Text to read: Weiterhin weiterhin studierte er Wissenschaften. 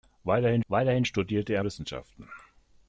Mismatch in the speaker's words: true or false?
false